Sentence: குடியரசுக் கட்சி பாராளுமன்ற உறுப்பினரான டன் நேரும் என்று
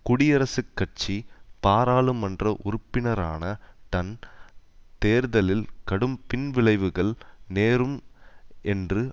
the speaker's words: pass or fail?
fail